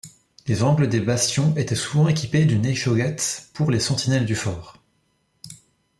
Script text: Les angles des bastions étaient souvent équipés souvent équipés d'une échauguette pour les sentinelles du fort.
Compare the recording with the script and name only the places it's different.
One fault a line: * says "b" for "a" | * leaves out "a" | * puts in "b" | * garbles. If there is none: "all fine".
* leaves out "souvent équipés"